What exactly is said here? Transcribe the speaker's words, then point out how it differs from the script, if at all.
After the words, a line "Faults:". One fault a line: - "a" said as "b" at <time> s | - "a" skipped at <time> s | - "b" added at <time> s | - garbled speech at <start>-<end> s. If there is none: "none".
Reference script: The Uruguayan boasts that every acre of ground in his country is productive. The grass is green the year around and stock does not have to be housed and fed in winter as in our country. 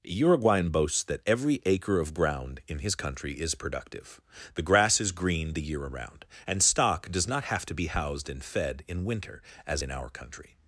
Uruguayan boasts that every acre of ground in his country is productive. The grass is green the year around and stock does not have to be housed and fed in winter as in our country.
Faults:
- "The" skipped at 0.0 s